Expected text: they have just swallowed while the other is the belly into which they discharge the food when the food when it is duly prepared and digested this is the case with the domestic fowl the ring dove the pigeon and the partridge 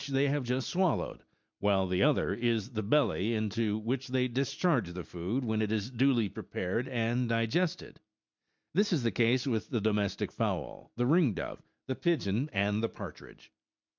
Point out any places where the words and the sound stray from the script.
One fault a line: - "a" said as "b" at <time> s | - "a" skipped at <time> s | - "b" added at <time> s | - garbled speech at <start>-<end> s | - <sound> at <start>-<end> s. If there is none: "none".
- "the food when" skipped at 5.6 s